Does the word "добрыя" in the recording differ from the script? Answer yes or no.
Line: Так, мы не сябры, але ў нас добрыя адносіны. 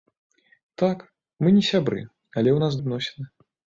yes